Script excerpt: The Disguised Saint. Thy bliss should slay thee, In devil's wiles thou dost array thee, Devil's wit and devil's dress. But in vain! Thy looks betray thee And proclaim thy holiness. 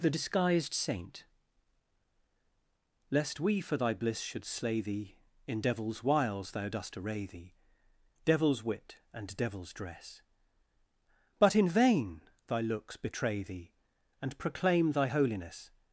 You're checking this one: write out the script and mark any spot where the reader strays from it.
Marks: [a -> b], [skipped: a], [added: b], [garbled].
The Disguised Saint. [added: Lest we for] Thy bliss should slay thee, In devil's wiles thou dost array thee, Devil's wit and devil's dress. But in vain! Thy looks betray thee And proclaim thy holiness.